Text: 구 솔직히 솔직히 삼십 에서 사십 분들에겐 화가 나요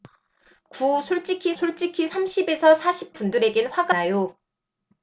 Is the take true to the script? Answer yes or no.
yes